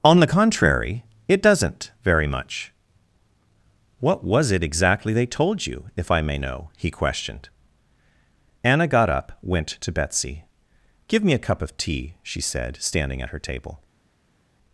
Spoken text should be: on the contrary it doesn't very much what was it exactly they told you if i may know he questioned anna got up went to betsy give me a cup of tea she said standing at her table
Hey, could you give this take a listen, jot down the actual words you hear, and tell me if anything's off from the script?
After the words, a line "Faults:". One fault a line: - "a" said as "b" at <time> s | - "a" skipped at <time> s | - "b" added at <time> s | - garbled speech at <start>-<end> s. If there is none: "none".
on the contrary it doesn't very much what was it exactly they told you if i may know he questioned anna got up went to betsy give me a cup of tea she said standing at her table
Faults:
none